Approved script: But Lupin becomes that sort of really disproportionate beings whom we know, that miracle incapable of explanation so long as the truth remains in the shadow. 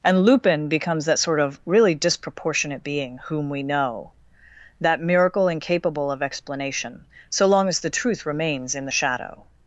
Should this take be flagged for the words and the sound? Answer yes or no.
yes